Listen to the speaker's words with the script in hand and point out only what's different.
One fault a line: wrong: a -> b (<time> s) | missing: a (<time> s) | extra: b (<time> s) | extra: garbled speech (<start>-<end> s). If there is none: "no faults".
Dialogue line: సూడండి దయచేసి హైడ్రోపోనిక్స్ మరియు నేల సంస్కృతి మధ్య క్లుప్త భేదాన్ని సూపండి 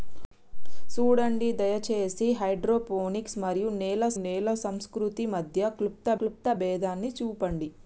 extra: నేల (4.2 s)
extra: క్లుప్త (6.2 s)